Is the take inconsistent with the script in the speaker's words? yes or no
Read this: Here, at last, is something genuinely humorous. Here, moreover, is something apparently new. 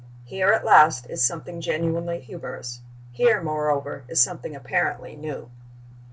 no